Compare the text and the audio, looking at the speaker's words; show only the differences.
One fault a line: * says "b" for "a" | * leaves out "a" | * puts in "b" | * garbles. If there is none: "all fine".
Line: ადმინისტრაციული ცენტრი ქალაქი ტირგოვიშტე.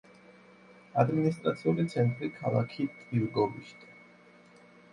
all fine